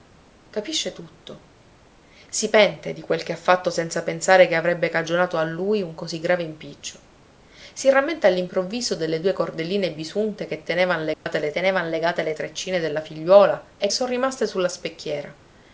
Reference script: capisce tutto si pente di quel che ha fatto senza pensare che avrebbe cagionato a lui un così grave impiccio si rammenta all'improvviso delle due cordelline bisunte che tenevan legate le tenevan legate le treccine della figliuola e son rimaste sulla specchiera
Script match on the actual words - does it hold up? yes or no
yes